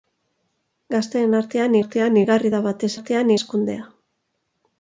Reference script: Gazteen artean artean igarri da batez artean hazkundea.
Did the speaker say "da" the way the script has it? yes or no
yes